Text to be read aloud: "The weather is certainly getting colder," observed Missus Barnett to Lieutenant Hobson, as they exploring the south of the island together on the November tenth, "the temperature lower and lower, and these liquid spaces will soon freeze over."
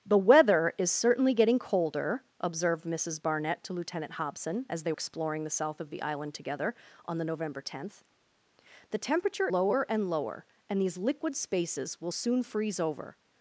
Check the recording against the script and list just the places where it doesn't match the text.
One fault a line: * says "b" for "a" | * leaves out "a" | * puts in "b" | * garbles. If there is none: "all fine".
all fine